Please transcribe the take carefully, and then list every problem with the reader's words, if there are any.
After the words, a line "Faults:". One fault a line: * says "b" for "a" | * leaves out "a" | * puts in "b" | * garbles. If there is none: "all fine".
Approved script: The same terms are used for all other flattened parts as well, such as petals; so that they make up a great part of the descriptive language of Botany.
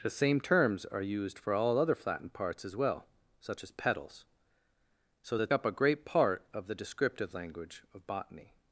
The same terms are used for all other flattened parts as well, such as petals; so that up a great part of the descriptive language of Botany.
Faults:
* leaves out "they make"